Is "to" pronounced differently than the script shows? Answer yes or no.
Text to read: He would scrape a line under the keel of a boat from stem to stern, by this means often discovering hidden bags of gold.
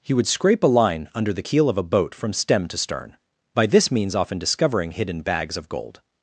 no